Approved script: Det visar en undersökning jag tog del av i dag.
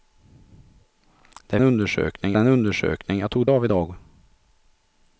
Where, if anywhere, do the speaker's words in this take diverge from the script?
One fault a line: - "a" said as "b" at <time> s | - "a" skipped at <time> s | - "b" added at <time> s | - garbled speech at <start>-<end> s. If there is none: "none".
- "visar" said as "undersökning" at 1.6 s
- "del" skipped at 3.5 s